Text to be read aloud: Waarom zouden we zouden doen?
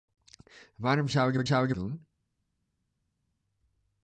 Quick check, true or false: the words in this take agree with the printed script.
true